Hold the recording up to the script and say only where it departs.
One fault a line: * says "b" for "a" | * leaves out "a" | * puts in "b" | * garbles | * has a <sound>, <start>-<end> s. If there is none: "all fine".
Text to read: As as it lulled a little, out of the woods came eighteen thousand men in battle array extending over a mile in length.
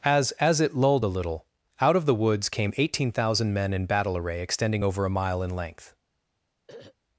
* has a throat clearing, 6.7-7.0 s